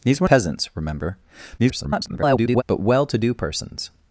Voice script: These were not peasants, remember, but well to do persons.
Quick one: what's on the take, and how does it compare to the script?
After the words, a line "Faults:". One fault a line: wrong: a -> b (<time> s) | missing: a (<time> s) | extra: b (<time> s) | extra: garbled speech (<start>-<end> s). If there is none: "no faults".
These were peasants, remember, [garbled] but well to do persons.
Faults:
missing: not (0.3 s)
extra: garbled speech (1.6-2.6 s)